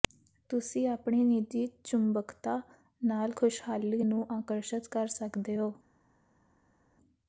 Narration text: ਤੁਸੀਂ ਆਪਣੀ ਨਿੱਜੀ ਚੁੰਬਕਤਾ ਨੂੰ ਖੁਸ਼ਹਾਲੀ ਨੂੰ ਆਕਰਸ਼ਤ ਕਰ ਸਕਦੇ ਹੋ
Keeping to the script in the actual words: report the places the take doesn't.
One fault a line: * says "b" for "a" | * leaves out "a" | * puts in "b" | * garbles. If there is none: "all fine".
* says "ਨਾਲ" for "ਨੂੰ"